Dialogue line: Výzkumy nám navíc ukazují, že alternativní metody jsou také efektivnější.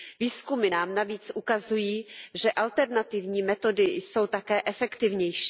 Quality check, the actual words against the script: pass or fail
pass